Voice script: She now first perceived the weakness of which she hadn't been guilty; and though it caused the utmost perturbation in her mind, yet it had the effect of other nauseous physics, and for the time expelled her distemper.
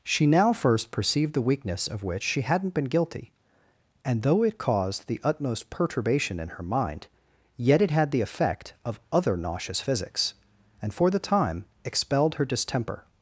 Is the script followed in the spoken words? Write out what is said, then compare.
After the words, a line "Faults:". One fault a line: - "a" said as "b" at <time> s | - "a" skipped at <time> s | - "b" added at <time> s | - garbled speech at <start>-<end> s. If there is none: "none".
She now first perceived the weakness of which she hadn't been guilty; and though it caused the utmost perturbation in her mind, yet it had the effect of other nauseous physics, and for the time expelled her distemper.
Faults:
none